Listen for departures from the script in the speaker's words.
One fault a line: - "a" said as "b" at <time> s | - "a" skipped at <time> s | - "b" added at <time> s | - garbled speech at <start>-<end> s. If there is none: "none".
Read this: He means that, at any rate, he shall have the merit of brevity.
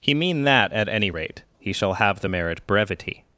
- "means" said as "mean" at 0.1 s
- "of" skipped at 2.7 s